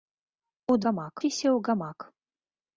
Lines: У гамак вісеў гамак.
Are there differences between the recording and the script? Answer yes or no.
no